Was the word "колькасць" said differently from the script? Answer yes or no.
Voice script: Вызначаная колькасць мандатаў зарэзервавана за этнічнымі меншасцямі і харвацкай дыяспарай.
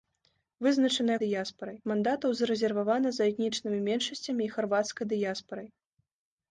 yes